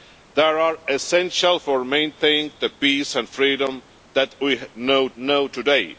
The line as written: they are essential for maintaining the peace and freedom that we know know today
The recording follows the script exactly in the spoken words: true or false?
true